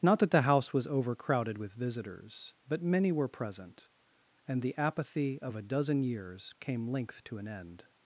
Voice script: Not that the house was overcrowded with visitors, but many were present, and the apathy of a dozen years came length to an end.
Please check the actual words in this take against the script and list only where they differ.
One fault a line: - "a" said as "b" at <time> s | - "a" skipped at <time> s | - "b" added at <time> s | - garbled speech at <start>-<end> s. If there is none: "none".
none